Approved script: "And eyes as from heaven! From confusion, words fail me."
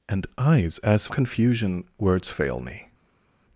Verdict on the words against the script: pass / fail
fail